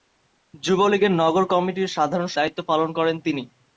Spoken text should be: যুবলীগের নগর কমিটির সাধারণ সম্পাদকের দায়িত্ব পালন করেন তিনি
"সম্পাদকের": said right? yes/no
no